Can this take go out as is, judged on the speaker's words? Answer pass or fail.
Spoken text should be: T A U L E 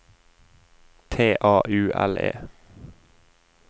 pass